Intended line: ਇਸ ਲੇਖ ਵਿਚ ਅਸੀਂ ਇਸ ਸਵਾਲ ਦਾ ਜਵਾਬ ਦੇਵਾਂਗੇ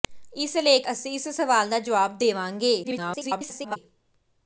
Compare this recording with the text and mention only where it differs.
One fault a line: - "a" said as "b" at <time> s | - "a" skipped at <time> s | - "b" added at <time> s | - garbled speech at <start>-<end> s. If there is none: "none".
- "ਵਿਚ" skipped at 0.9 s
- garbled speech at 2.8-3.8 s